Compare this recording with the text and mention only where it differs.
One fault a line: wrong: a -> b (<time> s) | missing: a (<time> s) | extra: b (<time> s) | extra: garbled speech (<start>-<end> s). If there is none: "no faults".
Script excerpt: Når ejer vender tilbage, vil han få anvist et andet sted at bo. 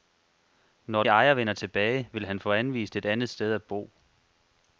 no faults